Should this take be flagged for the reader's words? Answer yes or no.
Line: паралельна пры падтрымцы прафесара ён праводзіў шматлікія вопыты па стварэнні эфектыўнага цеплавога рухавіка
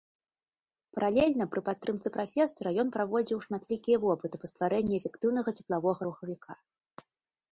no